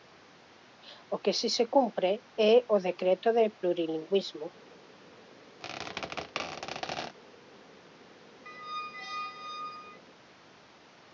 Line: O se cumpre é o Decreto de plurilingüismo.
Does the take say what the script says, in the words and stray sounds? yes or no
no